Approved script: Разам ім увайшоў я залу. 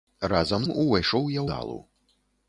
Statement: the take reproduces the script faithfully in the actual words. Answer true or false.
true